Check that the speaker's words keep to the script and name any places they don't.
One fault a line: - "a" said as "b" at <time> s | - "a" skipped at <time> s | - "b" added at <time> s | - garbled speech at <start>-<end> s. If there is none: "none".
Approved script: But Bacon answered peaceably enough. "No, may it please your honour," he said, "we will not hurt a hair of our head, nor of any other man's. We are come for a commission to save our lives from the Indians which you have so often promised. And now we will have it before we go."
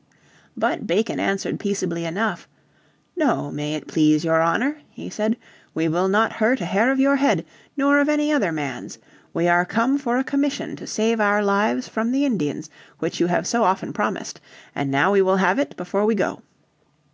- "our" said as "your" at 7.0 s